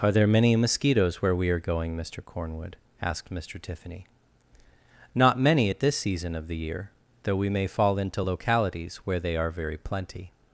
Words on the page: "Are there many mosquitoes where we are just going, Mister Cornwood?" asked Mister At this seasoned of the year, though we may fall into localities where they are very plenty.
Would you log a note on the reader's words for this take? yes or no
yes